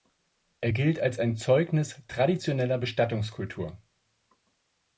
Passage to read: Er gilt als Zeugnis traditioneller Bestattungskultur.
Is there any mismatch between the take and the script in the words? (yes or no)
yes